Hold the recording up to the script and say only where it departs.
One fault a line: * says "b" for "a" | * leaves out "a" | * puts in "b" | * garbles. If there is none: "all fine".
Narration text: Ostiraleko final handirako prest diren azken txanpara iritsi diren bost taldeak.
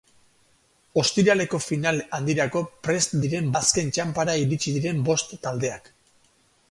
all fine